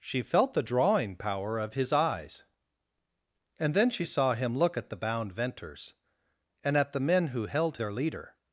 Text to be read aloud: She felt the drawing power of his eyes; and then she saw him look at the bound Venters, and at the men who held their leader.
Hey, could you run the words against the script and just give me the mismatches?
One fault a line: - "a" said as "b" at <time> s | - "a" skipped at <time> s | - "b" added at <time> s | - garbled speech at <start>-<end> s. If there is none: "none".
none